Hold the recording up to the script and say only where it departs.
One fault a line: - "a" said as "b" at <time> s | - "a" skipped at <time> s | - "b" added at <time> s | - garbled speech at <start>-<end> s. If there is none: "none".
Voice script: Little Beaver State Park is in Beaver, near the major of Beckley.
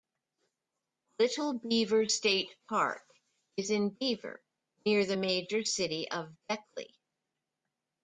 - "city" added at 5.6 s